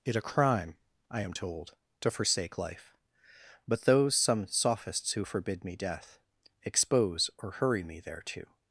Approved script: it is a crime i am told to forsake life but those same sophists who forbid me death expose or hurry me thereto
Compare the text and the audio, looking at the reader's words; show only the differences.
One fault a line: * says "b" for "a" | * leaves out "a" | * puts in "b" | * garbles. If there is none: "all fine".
* leaves out "is"
* says "some" for "same"